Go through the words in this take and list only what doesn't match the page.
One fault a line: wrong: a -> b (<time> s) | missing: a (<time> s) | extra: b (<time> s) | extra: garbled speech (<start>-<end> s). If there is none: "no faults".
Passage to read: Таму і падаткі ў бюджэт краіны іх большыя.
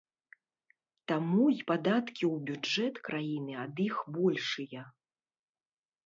extra: ад (3.6 s)